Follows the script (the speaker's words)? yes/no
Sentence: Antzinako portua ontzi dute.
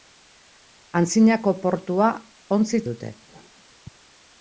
yes